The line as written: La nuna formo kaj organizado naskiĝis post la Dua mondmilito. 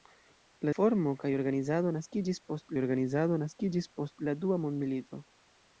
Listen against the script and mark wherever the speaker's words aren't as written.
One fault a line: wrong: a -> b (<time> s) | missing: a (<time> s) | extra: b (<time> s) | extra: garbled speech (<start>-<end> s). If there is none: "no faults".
missing: nuna (0.7 s)
extra: organizado naskiĝis post (2.8 s)